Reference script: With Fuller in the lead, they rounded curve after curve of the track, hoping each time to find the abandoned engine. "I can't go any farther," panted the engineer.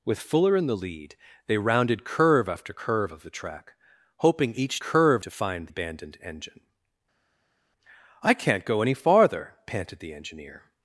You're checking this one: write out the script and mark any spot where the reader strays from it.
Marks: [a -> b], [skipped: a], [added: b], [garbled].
With Fuller in the lead, they rounded curve after curve of the track, hoping each [time -> curve] to find [skipped: the] abandoned engine. "I can't go any farther," panted the engineer.